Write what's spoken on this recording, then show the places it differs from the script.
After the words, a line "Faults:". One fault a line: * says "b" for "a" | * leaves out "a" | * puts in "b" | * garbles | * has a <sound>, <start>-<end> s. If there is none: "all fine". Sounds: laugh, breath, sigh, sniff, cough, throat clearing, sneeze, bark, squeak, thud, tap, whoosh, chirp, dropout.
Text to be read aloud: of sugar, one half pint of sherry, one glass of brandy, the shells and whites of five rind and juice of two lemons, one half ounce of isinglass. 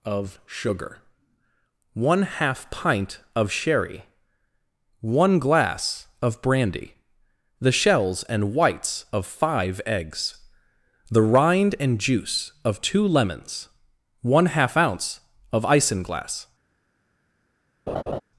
of sugar, one half pint of sherry, one glass of brandy, the shells and whites of five eggs, the rind and juice of two lemons, one half ounce of isinglass.
Faults:
* puts in "eggs the"
* has a laugh, 17.9-18.2 s